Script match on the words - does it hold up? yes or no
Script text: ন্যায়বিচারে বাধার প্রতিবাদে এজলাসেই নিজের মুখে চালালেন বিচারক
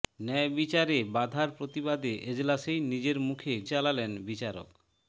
yes